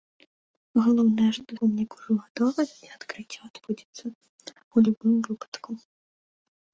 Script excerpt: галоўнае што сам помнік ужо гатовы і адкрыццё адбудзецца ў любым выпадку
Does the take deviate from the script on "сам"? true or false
true